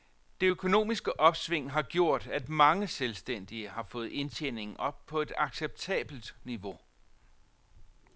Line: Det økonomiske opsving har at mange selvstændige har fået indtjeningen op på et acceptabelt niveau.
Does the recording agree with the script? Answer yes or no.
no